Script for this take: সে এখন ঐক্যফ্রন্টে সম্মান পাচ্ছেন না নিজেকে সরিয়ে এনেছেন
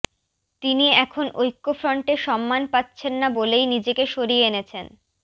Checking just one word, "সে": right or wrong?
wrong